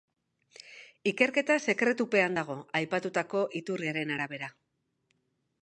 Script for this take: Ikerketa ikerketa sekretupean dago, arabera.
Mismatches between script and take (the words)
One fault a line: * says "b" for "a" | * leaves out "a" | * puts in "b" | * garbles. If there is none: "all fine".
* leaves out "ikerketa"
* puts in "aipatutako iturriaren"